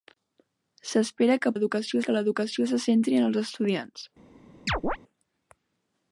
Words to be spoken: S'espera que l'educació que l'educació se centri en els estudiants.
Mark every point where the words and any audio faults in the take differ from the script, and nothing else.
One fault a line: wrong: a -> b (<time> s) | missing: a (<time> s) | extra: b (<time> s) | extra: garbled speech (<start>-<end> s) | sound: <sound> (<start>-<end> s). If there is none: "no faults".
sound: chirp (4.7-5.0 s)